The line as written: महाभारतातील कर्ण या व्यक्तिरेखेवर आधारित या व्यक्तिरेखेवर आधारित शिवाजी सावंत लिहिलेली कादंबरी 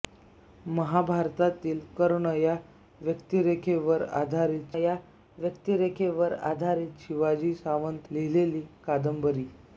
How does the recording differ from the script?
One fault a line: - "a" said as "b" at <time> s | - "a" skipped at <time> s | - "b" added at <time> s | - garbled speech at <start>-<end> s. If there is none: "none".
none